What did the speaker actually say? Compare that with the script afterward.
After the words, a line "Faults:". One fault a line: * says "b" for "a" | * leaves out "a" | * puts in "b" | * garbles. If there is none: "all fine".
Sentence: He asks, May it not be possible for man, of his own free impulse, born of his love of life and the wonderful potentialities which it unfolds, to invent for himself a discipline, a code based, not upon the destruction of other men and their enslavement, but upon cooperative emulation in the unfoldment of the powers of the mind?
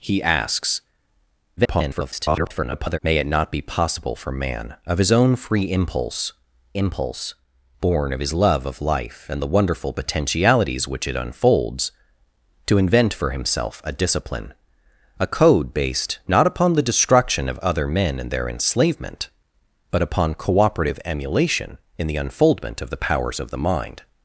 He asks, [garbled] May it not be possible for man, of his own free impulse impulse, born of his love of life and the wonderful potentialities which it unfolds, to invent for himself a discipline, a code based, not upon the destruction of other men and their enslavement, but upon cooperative emulation in the unfoldment of the powers of the mind?
Faults:
* garbles
* puts in "impulse"